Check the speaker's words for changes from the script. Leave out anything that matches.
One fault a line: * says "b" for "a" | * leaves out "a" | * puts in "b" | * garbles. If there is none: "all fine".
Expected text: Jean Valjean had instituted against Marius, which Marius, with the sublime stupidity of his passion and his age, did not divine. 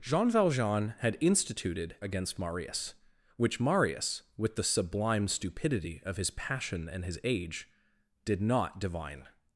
all fine